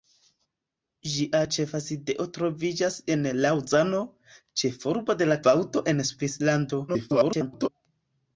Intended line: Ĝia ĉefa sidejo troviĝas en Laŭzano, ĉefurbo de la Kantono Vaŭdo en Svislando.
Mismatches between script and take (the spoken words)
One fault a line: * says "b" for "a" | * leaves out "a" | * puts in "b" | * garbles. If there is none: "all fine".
* leaves out "Kantono"
* garbles